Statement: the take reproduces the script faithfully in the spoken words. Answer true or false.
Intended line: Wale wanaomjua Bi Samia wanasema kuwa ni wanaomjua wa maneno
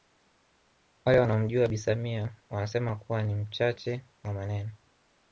false